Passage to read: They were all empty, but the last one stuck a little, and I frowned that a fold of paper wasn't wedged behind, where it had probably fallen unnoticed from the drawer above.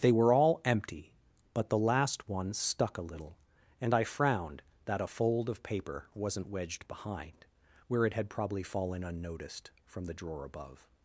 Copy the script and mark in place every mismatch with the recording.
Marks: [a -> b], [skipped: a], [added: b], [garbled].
They were all empty, but the last one stuck a little, and I frowned that a fold of paper wasn't wedged behind, where it had probably fallen unnoticed from the drawer above.